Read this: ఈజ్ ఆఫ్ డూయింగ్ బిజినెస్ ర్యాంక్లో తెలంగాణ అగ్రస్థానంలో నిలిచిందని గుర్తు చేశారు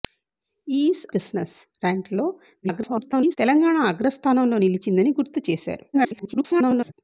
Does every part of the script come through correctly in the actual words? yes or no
no